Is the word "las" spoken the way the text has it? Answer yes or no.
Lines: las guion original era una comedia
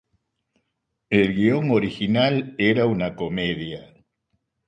no